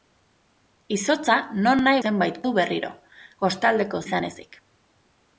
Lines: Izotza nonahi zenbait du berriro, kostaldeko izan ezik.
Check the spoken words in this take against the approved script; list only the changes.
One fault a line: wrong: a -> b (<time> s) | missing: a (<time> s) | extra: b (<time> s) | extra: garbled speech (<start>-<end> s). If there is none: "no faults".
no faults